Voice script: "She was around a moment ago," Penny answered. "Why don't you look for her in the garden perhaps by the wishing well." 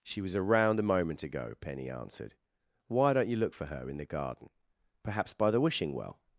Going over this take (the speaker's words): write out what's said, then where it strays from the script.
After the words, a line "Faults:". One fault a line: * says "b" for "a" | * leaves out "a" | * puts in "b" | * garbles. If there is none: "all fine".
"She was around a moment ago," Penny answered. "Why don't you look for her in the garden perhaps by the wishing well."
Faults:
all fine